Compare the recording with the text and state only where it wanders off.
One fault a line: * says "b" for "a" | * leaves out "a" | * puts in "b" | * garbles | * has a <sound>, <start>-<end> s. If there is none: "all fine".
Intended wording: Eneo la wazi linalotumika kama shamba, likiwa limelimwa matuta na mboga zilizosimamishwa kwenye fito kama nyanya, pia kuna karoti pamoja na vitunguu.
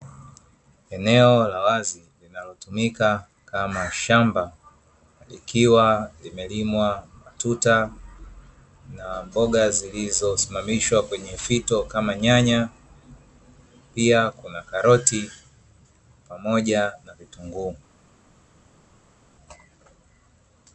all fine